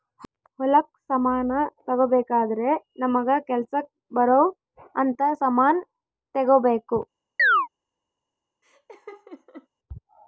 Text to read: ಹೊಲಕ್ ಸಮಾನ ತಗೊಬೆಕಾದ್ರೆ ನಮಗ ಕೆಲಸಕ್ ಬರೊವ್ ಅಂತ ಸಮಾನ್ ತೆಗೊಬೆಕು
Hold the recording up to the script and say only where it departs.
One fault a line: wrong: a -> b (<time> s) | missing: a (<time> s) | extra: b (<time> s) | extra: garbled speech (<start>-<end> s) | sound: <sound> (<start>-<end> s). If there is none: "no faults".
sound: chirp (7.4-7.7 s)
sound: laugh (8.6-9.7 s)